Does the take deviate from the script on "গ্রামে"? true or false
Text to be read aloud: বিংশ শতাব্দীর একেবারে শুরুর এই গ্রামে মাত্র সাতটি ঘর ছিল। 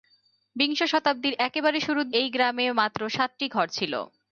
false